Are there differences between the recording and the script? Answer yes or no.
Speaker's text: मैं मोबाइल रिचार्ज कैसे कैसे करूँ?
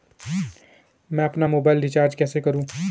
yes